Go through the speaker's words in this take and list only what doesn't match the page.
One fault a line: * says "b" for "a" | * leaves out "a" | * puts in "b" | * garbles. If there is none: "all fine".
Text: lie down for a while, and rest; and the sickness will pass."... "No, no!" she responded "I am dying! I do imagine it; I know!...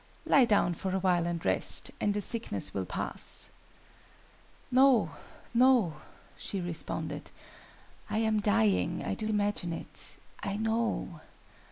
all fine